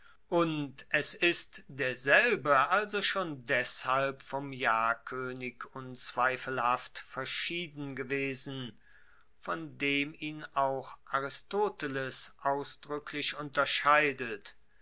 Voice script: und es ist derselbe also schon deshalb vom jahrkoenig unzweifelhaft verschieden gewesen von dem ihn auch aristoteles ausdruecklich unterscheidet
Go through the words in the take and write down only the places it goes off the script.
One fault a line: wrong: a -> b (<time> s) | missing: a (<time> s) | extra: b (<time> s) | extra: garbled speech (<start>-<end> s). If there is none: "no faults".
no faults